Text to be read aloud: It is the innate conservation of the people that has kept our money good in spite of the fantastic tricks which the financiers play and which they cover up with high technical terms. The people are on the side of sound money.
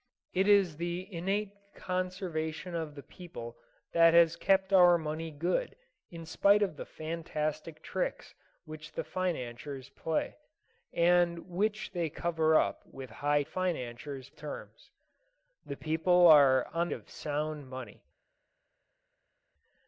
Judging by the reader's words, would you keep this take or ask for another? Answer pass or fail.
fail